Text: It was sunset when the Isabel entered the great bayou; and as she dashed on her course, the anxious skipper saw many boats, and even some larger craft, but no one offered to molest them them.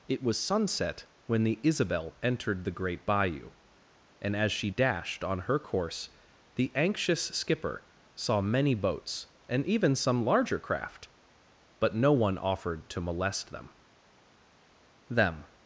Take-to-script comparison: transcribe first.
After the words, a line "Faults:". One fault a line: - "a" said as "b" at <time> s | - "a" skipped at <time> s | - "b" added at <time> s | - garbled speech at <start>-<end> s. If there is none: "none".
It was sunset when the Isabel entered the great bayou; and as she dashed on her course, the anxious skipper saw many boats, and even some larger craft, but no one offered to molest them them.
Faults:
none